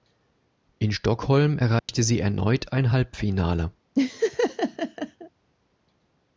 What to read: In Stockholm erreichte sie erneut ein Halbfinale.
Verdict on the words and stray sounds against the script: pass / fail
fail